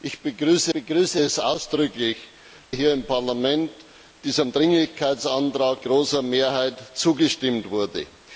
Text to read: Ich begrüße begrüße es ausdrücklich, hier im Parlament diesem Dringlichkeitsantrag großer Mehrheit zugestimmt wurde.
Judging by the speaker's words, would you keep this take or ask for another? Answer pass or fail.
pass